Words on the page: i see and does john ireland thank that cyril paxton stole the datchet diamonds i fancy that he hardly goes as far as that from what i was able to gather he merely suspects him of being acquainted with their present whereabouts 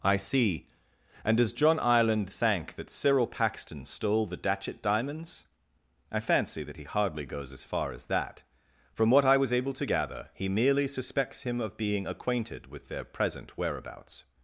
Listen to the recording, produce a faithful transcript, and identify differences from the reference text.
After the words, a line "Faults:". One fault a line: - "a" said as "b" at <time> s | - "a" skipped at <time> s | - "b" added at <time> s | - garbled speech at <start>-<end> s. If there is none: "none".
i see and does john ireland thank that cyril paxton stole the datchet diamonds i fancy that he hardly goes as far as that from what i was able to gather he merely suspects him of being acquainted with their present whereabouts
Faults:
none